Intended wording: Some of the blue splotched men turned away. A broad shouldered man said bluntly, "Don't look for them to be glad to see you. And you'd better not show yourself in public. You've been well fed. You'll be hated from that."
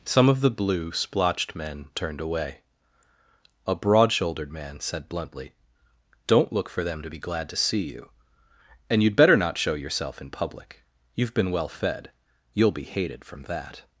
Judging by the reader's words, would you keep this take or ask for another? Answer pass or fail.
pass